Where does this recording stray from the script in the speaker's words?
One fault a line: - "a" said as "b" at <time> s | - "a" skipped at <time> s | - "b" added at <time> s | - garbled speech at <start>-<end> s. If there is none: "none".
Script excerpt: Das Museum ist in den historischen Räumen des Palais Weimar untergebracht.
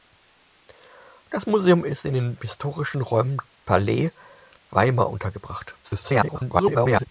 - "des" skipped at 3.4 s
- garbled speech at 5.8-7.1 s